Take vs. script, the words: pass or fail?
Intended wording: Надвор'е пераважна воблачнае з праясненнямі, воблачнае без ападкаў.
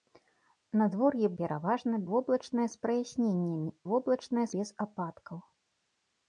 pass